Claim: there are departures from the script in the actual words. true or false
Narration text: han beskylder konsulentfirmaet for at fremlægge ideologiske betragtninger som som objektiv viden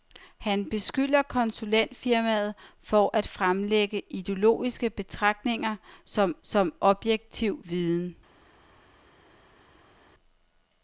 false